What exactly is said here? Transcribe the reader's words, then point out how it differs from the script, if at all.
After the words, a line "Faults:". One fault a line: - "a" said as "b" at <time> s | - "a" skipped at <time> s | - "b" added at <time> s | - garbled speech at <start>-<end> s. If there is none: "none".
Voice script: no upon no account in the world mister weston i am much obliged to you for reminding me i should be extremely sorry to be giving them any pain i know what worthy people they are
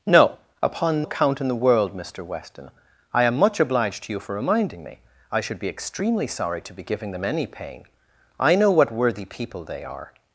no upon account in the world mister weston i am much obliged to you for reminding me i should be extremely sorry to be giving them any pain i know what worthy people they are
Faults:
- "no" skipped at 1.1 s